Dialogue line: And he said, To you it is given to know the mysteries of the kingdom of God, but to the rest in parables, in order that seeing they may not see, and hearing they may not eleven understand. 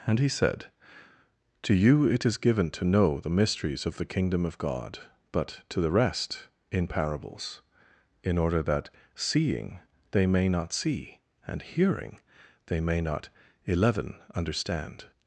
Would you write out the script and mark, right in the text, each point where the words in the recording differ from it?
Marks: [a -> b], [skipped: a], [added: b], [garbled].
And he said, To you it is given to know the mysteries of the kingdom of God, but to the rest in parables, in order that seeing they may not see, and hearing they may not eleven understand.